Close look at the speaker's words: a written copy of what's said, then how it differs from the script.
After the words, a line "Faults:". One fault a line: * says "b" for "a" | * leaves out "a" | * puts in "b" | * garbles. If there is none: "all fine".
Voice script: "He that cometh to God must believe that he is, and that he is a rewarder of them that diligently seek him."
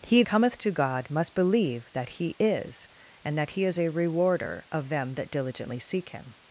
"He cometh to God must believe that he is, and that he is a rewarder of them that diligently seek him."
Faults:
* leaves out "that"